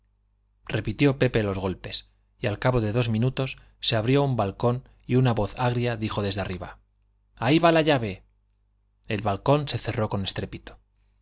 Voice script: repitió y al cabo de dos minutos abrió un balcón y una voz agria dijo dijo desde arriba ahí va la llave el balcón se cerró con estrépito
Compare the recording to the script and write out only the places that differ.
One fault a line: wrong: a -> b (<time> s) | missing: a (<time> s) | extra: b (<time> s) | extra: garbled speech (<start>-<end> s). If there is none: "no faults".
extra: pepe los golpes (1.2 s)
extra: se (3.8 s)
missing: dijo (6.2 s)